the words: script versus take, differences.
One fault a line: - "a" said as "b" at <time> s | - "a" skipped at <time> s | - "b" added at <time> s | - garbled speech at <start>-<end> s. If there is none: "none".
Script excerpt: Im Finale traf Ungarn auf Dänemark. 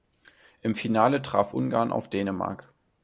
none